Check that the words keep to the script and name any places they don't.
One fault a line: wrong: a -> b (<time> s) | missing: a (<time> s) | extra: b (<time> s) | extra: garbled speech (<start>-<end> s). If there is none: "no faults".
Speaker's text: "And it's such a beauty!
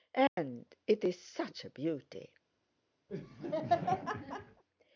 no faults